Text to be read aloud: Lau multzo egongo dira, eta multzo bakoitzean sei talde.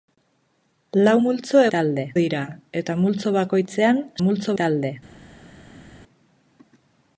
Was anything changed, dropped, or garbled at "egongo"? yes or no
yes